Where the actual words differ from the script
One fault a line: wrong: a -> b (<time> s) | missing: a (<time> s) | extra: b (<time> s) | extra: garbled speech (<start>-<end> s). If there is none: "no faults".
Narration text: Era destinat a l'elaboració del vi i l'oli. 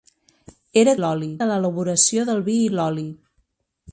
wrong: destinat -> l'oli (1.0 s)